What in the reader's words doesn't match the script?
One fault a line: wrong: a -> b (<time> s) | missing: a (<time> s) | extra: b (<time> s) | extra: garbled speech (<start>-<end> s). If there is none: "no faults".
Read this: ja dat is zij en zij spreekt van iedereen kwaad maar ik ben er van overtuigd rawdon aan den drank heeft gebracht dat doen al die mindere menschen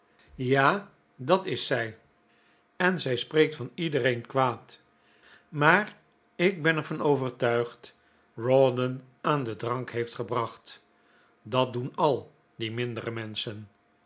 no faults